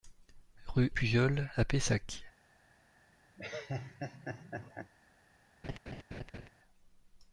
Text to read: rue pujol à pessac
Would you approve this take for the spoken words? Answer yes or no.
yes